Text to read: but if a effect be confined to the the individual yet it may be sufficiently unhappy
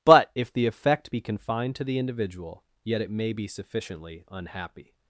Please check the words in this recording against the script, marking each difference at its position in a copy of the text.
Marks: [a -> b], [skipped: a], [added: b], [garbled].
but if [a -> the] effect be confined to the [skipped: the] individual yet it may be sufficiently unhappy